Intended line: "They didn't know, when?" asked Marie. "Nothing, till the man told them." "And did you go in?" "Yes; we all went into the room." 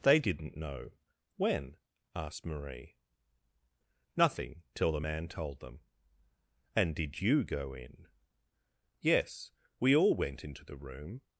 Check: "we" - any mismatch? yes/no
no